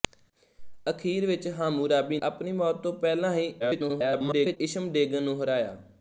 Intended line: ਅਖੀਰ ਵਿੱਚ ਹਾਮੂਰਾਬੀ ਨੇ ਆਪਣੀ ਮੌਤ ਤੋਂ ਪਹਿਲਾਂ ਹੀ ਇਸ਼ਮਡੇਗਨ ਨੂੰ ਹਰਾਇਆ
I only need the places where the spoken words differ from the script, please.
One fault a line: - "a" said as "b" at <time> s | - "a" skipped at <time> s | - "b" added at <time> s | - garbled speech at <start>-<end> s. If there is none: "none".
- "ਨੇ" skipped at 2.2 s
- garbled speech at 3.6-4.6 s